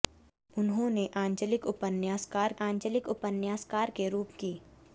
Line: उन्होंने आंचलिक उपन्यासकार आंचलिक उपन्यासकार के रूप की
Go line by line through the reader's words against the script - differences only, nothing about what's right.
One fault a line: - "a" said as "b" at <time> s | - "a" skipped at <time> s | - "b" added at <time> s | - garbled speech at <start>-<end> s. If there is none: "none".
none